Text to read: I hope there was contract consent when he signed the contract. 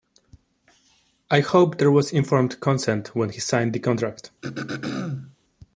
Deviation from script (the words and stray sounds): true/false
true